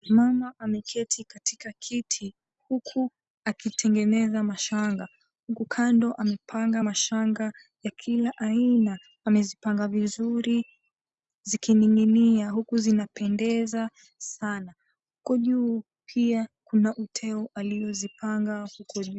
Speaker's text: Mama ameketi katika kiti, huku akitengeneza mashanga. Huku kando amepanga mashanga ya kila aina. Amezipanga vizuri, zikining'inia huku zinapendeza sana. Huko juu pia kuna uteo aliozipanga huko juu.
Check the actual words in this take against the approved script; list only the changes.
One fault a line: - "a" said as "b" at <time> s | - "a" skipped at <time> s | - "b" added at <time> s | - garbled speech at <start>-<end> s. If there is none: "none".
none